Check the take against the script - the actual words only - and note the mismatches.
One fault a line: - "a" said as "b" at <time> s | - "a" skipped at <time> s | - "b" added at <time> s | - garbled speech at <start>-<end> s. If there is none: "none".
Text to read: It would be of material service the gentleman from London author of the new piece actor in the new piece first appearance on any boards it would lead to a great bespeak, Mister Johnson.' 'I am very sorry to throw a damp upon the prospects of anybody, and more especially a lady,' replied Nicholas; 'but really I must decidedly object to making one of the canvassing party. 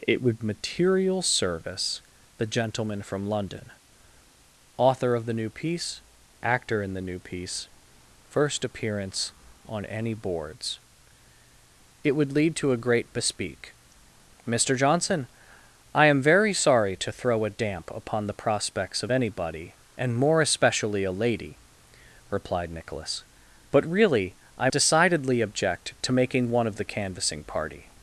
- "be of" skipped at 0.4 s
- "must" skipped at 24.7 s